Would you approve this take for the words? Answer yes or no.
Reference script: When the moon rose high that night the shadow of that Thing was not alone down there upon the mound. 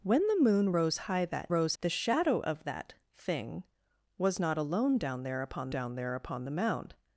no